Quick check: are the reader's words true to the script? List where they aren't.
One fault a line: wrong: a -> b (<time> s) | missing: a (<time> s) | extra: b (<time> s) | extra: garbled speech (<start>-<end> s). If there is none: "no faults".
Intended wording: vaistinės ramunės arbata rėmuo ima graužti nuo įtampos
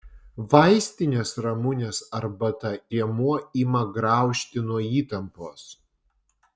no faults